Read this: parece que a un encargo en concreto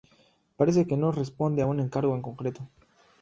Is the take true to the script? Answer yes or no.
no